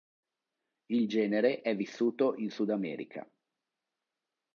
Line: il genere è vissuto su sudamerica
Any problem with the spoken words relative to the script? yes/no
yes